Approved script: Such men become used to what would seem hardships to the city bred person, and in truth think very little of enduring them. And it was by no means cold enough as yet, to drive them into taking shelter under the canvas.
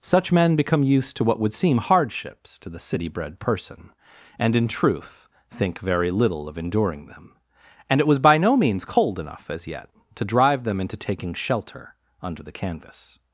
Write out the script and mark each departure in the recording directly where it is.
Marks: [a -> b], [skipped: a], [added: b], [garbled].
Such men become used to what would seem hardships to the city bred person, and in truth think very little of enduring them. And it was by no means cold enough as yet, to drive them into taking shelter under the canvas.